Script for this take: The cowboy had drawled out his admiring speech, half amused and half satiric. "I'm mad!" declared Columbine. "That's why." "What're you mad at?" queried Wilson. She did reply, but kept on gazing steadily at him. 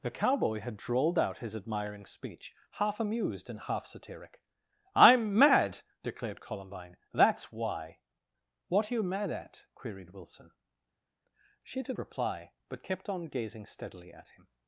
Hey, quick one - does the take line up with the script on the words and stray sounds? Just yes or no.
yes